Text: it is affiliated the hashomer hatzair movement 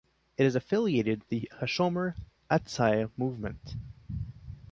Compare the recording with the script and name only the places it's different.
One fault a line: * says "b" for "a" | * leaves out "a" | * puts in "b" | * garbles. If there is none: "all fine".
all fine